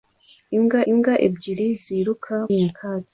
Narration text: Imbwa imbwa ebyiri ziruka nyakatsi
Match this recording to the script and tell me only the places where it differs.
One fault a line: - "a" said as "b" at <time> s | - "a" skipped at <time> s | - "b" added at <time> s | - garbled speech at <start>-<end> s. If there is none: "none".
none